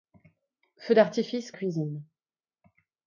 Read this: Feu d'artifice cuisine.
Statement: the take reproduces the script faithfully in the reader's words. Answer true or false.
true